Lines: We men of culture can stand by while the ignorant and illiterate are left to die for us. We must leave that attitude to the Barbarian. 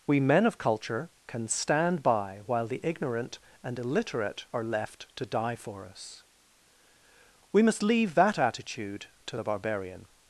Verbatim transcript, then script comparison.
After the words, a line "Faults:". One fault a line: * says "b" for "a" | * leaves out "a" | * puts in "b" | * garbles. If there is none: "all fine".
We men of culture can stand by while the ignorant and illiterate are left to die for us. We must leave that attitude to the Barbarian.
Faults:
all fine